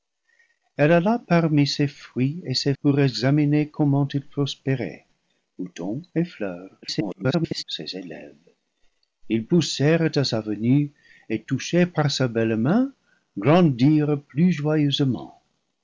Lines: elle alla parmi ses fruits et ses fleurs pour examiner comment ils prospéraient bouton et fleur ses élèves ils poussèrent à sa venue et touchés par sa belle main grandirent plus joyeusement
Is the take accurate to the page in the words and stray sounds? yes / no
no